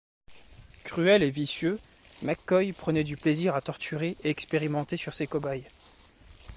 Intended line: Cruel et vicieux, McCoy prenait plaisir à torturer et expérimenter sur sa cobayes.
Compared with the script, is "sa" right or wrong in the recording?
wrong